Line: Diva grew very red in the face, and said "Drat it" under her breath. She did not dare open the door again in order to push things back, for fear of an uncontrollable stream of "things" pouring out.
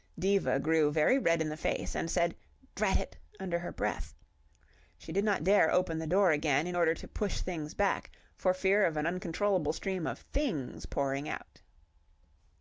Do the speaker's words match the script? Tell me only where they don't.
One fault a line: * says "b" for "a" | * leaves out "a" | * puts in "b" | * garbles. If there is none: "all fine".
all fine